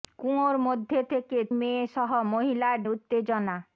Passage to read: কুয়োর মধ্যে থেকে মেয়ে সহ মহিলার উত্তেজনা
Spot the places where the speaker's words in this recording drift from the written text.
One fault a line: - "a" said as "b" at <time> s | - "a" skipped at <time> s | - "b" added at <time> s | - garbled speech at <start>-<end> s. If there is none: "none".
none